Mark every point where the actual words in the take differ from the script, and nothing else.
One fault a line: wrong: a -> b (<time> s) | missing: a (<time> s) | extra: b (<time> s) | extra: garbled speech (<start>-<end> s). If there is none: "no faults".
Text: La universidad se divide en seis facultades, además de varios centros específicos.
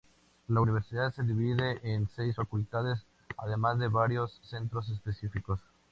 no faults